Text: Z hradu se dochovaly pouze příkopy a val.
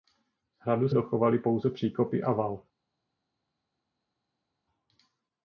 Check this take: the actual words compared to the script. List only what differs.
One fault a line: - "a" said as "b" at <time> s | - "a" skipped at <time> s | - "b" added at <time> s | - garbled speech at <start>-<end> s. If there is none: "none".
- "se" skipped at 0.9 s